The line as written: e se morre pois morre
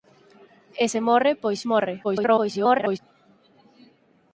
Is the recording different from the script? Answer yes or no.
yes